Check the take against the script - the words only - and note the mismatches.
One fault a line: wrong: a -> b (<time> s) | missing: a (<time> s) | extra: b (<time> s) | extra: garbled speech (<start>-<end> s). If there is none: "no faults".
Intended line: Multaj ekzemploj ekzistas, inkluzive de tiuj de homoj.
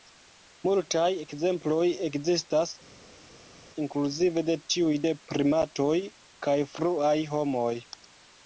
extra: primatoj kaj fruaj (5.3 s)